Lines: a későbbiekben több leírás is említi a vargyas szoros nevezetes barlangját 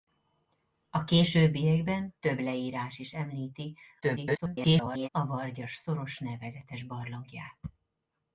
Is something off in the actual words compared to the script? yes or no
yes